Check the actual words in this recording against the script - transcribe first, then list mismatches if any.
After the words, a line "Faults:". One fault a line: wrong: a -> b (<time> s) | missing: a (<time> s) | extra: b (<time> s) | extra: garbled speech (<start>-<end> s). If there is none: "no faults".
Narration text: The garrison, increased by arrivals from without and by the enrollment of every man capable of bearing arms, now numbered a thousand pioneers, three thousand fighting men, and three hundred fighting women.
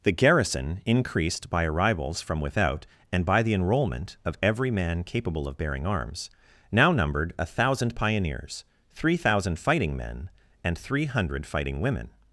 The garrison, increased by arrivals from without and by the enrollment of every man capable of bearing arms, now numbered a thousand pioneers, three thousand fighting men, and three hundred fighting women.
Faults:
no faults